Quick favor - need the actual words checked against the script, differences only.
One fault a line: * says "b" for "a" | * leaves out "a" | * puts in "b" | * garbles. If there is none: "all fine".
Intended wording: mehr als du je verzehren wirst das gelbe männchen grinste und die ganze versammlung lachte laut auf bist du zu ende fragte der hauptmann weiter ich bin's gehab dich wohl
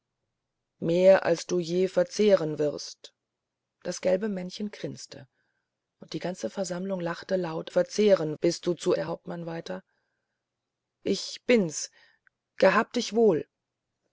* says "verzehren" for "auf"
* leaves out "ende fragte"